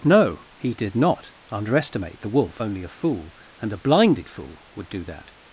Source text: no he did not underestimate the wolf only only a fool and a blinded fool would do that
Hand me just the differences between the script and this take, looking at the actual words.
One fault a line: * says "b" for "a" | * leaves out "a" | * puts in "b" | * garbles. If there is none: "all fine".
* leaves out "only"